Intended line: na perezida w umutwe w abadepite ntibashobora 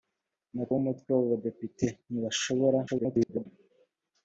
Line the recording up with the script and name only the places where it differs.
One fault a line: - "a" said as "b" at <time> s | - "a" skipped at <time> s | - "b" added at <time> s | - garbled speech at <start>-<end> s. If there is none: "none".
- "perezida" skipped at 0.7 s
- garbled speech at 2.9-3.5 s